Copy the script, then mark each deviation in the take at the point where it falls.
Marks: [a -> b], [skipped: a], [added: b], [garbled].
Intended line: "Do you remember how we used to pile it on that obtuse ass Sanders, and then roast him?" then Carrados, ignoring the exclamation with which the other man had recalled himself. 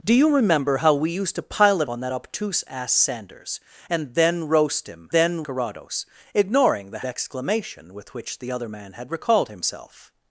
"Do you remember how we used to pile it on that obtuse ass Sanders, and then roast him?" then Carrados, ignoring the exclamation with which the other man had recalled himself.